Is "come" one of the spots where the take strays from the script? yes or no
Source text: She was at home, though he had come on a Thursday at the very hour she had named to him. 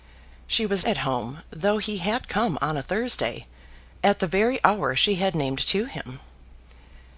no